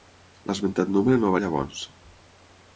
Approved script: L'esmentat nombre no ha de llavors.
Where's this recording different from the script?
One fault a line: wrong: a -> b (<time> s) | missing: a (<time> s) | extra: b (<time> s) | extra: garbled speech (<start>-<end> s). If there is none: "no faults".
no faults